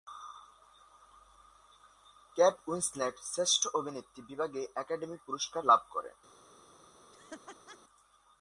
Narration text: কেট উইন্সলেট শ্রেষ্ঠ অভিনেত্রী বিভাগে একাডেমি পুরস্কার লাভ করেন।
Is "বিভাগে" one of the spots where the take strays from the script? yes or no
no